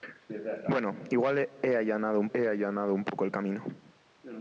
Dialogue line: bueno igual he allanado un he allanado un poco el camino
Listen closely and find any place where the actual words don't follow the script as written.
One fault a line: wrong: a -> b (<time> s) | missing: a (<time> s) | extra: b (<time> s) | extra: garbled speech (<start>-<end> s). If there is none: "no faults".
no faults